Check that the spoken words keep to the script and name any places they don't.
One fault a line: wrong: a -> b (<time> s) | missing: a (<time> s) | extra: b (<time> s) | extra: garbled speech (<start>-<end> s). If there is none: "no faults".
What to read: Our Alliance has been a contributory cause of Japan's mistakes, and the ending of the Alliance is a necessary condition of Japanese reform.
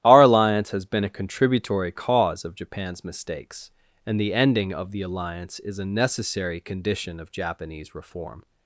no faults